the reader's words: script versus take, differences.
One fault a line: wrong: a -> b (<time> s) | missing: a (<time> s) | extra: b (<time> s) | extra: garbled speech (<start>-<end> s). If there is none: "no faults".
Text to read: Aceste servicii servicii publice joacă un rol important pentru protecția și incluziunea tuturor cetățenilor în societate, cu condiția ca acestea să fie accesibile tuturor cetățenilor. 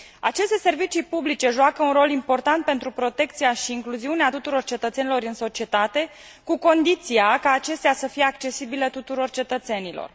missing: servicii (1.0 s)